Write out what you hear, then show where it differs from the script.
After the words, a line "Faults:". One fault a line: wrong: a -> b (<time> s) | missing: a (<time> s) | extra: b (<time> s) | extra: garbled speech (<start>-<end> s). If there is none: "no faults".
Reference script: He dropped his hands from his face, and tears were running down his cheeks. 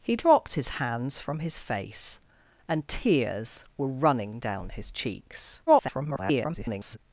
He dropped his hands from his face, and tears were running down his cheeks. [garbled]
Faults:
extra: garbled speech (5.7-7.0 s)